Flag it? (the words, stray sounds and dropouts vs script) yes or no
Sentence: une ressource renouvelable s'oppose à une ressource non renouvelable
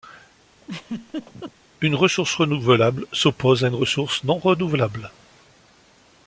yes